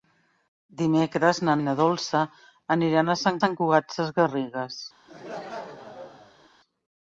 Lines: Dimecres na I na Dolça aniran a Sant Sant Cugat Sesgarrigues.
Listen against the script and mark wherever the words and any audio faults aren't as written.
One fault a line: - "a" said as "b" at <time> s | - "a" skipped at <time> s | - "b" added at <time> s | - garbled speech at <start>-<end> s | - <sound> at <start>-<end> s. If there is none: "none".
- laugh at 5.1-6.5 s